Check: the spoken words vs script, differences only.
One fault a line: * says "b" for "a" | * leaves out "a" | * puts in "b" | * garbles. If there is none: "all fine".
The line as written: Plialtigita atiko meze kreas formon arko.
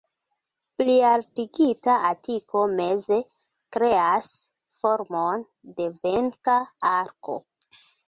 * puts in "de venka"